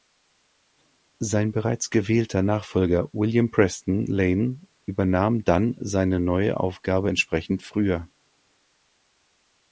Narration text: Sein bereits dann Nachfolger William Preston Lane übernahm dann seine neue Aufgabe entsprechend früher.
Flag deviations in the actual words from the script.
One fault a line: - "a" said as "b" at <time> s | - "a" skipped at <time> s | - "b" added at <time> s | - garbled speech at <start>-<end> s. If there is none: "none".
- "dann" said as "gewählter" at 1.9 s